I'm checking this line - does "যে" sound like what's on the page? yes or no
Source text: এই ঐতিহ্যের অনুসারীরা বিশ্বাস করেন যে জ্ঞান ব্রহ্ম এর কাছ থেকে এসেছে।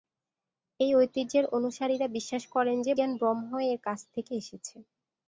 yes